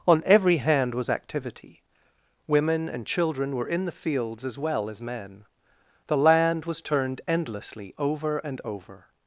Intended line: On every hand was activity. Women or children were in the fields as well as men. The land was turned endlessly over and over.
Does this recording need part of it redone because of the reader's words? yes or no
yes